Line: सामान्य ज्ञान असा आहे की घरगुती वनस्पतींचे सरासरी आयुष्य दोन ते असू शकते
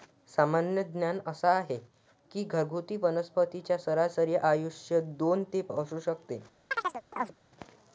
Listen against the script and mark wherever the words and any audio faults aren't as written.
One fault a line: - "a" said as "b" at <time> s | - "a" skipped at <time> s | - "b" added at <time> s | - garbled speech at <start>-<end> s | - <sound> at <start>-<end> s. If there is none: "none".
- chirp at 6.7-7.4 s